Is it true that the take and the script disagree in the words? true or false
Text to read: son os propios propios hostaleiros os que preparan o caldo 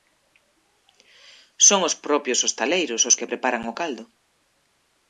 true